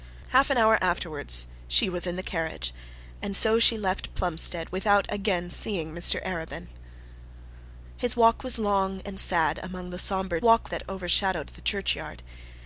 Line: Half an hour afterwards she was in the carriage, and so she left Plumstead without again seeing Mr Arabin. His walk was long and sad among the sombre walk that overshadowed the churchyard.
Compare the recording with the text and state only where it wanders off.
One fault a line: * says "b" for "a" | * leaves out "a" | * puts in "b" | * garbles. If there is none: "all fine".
all fine